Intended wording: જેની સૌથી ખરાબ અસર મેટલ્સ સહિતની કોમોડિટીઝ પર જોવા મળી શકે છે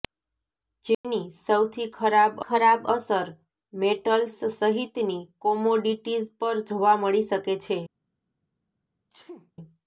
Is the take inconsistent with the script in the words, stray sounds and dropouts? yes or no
yes